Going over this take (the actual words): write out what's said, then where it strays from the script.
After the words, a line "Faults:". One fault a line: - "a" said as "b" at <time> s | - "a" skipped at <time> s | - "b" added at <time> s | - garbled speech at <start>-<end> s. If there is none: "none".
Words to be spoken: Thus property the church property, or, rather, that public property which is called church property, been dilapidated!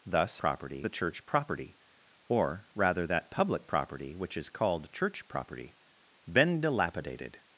Thus property the church property, or, rather, that public property which is called church property, been dilapidated!
Faults:
none